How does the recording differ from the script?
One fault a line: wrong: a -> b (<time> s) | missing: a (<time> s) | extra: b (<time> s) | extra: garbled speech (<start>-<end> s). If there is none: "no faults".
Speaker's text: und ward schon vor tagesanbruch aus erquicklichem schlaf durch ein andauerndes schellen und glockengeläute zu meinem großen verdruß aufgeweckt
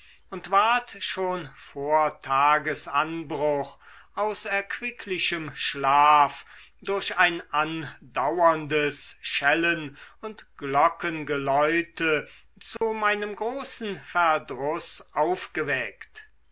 no faults